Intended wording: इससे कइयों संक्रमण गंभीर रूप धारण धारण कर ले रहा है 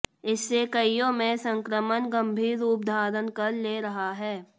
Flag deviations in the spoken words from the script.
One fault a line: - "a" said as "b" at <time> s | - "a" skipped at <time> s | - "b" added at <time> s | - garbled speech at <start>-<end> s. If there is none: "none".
- "में" added at 1.1 s
- "धारण" skipped at 3.3 s